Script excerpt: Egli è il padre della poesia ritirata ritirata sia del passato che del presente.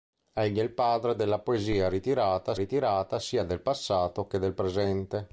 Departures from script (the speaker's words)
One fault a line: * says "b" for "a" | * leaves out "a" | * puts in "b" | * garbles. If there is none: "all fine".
all fine